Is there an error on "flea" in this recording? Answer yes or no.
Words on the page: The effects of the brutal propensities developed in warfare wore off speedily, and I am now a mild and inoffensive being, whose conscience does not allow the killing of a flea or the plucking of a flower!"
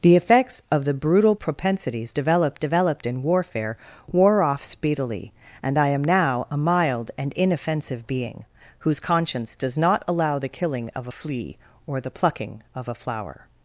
no